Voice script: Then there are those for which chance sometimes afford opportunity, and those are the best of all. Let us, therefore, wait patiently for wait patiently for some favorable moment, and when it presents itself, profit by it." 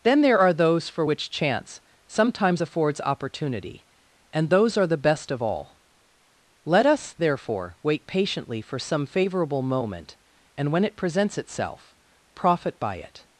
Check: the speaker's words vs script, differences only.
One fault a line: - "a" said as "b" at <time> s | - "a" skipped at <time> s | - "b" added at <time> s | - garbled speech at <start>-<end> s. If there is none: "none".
- "afford" said as "affords" at 2.6 s
- "wait patiently for" skipped at 8.8 s